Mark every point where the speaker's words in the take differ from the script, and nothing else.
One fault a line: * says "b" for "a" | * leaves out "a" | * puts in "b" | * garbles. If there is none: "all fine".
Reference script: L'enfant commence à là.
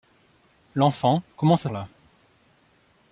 all fine